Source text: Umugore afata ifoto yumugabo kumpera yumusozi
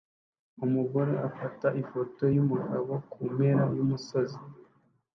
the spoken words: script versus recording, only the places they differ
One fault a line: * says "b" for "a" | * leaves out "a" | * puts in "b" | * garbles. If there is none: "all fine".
all fine